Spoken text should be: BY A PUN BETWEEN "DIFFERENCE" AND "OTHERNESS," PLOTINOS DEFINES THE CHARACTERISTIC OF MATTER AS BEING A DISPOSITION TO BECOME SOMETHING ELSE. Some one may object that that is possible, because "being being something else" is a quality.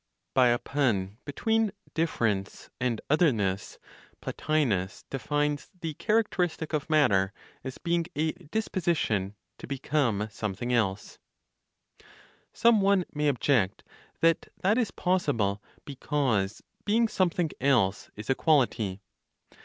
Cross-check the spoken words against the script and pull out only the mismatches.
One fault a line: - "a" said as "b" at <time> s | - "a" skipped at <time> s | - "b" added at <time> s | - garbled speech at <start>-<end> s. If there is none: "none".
- "being" skipped at 17.1 s